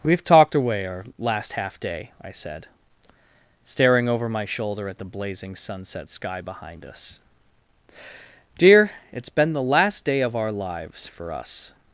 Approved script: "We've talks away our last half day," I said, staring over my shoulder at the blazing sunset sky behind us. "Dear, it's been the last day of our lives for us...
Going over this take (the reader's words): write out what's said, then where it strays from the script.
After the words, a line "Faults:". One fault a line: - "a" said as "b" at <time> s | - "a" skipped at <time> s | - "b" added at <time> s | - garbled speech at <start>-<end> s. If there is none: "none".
"We've talked away our last half day," I said, staring over my shoulder at the blazing sunset sky behind us. "Dear, it's been the last day of our lives for us...
Faults:
- "talks" said as "talked" at 0.2 s